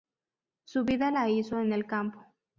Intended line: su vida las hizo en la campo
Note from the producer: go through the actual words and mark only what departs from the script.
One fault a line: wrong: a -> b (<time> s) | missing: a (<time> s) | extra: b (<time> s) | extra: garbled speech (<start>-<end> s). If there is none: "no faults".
wrong: las -> la (1.1 s)
wrong: la -> el (1.7 s)